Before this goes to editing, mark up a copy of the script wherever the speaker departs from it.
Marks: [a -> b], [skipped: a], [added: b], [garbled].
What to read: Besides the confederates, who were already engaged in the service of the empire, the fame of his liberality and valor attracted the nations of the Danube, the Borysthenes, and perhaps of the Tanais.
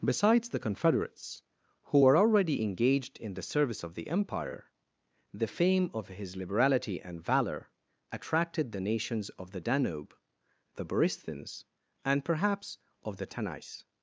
Besides the confederates, who were already engaged in the service of the empire, the fame of his liberality and valor attracted the nations of the Danube, the Borysthenes, and perhaps of the Tanais.